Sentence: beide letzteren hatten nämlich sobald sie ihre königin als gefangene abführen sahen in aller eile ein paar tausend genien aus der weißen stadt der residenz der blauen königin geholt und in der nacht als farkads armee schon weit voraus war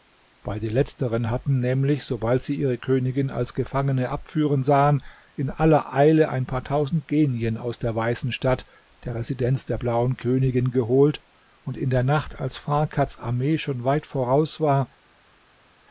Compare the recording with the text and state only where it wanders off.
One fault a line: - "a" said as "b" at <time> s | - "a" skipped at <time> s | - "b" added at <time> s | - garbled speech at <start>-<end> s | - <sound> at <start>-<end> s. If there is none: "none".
none